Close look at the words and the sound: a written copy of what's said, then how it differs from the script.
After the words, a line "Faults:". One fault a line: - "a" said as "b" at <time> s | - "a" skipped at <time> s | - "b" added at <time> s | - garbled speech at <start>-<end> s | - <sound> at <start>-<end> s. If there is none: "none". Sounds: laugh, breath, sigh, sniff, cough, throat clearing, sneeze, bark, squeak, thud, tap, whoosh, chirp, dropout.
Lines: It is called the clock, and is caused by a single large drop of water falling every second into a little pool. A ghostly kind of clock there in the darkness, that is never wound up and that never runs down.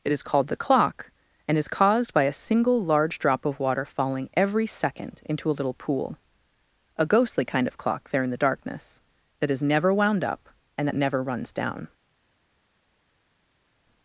It is called the clock, and is caused by a single large drop of water falling every second into a little pool. A ghostly kind of clock there in the darkness, that is never wound up and that never runs down.
Faults:
none